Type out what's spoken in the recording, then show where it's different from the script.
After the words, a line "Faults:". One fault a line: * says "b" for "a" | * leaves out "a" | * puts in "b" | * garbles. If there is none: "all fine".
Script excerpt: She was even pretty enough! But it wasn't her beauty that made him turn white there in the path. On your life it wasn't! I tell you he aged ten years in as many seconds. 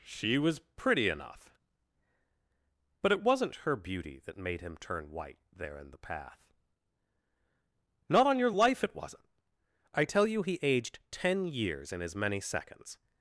She was pretty enough! But it wasn't her beauty that made him turn white there in the path. Not on your life it wasn't! I tell you he aged ten years in as many seconds.
Faults:
* leaves out "even"
* puts in "Not"